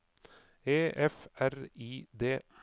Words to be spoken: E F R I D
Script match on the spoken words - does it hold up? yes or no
yes